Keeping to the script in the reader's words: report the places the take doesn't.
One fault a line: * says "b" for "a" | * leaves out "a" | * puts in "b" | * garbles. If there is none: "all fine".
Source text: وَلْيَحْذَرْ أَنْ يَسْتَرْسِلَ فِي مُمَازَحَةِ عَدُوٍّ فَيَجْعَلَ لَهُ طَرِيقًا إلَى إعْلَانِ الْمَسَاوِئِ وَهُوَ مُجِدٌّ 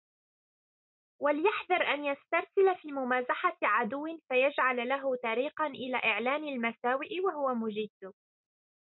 all fine